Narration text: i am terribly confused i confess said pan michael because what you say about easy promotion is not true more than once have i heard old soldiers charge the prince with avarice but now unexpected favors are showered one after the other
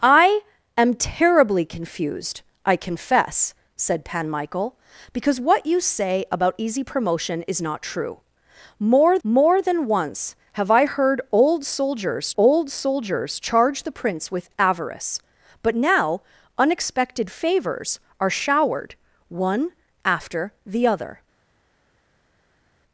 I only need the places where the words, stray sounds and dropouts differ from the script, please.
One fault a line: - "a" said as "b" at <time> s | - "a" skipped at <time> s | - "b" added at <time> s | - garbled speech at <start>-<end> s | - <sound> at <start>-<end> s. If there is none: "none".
- "more" added at 9.2 s
- "old soldiers" added at 12.4 s